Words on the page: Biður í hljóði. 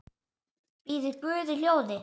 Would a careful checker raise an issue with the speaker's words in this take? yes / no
yes